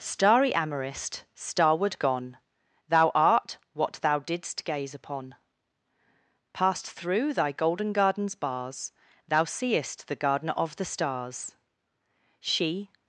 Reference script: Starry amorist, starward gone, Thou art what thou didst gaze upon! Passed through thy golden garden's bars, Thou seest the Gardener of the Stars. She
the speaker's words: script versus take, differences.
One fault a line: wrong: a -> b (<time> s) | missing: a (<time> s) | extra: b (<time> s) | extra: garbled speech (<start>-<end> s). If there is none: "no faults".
no faults